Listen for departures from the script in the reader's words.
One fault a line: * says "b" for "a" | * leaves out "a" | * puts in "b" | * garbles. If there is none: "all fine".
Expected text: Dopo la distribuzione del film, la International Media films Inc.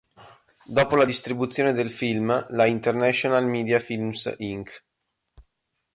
all fine